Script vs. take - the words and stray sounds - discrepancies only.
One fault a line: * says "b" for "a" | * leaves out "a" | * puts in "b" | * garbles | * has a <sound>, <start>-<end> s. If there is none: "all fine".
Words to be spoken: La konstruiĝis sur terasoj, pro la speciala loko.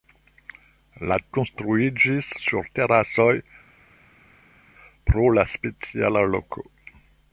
all fine